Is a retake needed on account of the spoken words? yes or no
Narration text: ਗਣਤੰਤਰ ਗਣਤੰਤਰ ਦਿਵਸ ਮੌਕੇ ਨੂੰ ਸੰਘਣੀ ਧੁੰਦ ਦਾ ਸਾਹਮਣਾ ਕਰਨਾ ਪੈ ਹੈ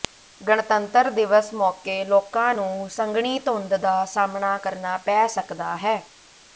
yes